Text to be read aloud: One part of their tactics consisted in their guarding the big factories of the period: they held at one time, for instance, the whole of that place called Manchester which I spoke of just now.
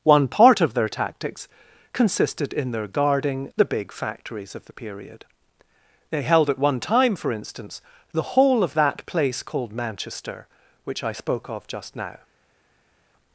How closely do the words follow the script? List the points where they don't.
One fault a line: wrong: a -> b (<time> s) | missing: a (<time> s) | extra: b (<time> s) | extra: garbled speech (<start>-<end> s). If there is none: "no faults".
no faults